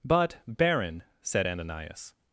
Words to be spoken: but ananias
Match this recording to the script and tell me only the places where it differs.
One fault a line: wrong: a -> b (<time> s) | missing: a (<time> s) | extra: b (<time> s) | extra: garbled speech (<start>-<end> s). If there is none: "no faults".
extra: baron said (0.5 s)